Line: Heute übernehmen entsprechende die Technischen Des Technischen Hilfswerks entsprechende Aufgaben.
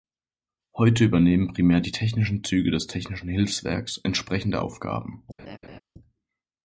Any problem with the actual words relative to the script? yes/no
yes